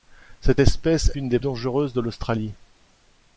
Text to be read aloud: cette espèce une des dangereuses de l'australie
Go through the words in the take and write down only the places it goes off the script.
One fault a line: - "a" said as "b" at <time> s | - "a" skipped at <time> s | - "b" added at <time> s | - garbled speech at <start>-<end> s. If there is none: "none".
none